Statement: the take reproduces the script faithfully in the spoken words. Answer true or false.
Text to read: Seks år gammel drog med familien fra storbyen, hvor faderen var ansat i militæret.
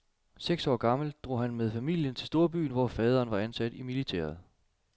false